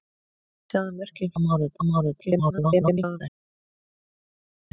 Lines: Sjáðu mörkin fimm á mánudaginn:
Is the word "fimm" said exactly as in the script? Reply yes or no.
no